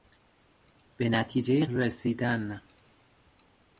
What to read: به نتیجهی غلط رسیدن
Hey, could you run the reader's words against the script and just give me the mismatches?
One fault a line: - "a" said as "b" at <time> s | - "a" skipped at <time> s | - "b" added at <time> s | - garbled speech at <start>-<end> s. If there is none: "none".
- "غلط" skipped at 1.6 s